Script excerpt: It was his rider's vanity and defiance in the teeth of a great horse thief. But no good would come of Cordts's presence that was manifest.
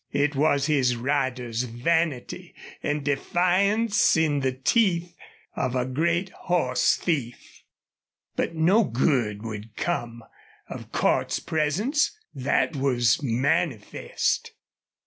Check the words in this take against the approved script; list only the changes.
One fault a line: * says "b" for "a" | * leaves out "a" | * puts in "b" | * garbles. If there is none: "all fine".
all fine